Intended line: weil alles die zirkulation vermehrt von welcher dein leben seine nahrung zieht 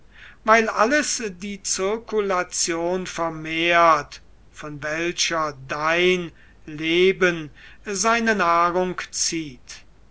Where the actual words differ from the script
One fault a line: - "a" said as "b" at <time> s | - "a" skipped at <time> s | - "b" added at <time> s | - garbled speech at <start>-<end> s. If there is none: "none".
none